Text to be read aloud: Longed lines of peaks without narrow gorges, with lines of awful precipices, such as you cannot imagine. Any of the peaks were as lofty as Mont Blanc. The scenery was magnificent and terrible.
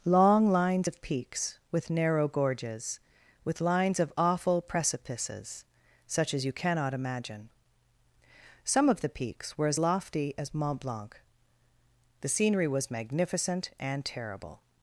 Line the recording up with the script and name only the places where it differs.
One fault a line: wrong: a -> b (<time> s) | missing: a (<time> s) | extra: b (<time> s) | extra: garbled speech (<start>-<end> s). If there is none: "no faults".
wrong: Longed -> Long (0.1 s)
wrong: without -> with (1.7 s)
wrong: Any -> Some (8.6 s)